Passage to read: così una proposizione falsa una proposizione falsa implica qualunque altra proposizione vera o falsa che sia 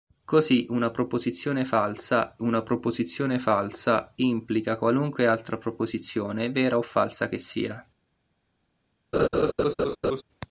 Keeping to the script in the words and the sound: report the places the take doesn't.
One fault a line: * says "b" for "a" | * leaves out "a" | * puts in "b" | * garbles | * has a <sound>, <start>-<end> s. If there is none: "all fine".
* has a laugh, 9.1-10.2 s